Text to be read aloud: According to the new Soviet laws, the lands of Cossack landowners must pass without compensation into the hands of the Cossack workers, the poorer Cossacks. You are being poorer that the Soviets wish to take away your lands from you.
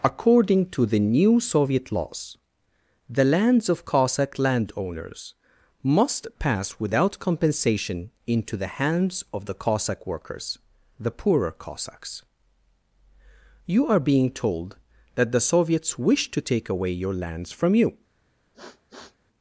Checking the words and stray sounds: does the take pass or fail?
fail